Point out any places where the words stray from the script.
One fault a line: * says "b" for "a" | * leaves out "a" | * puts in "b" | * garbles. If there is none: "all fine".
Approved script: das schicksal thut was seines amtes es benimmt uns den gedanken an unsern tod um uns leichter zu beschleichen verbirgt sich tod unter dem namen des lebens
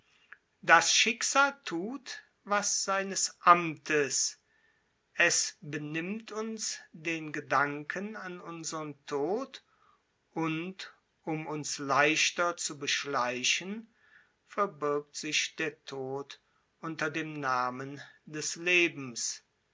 * puts in "und"
* puts in "der"